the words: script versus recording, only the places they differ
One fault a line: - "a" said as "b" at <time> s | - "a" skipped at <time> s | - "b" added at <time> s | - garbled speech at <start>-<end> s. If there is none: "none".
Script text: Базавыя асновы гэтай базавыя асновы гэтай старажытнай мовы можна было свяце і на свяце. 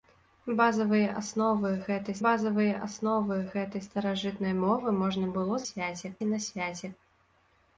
none